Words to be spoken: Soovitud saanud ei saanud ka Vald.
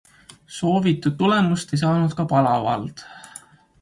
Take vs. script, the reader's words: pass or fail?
fail